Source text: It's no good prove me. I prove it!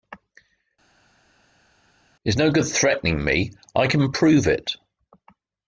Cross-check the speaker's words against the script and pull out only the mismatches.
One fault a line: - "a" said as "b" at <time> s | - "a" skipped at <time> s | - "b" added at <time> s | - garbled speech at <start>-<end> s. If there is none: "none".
- "prove" said as "threatening" at 2.7 s
- "can" added at 3.9 s